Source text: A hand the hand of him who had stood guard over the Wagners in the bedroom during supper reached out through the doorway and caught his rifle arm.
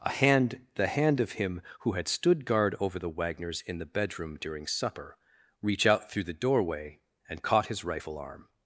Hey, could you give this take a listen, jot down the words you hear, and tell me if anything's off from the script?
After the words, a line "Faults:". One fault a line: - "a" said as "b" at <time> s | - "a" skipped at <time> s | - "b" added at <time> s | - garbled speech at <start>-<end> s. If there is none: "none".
A hand the hand of him who had stood guard over the Wagners in the bedroom during supper reach out through the doorway and caught his rifle arm.
Faults:
- "reached" said as "reach" at 5.6 s